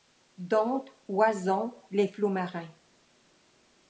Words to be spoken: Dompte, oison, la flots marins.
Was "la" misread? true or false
true